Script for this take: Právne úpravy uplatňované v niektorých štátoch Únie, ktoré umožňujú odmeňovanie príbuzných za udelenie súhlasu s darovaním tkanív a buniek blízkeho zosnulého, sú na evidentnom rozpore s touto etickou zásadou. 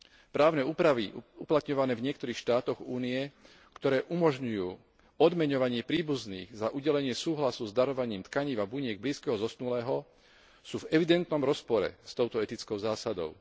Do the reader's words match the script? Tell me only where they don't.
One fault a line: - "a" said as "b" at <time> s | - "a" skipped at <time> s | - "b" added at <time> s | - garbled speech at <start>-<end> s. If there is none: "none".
- "na" said as "v" at 10.8 s